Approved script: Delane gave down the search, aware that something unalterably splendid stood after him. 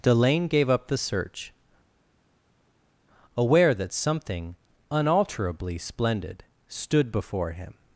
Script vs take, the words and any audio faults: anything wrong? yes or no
yes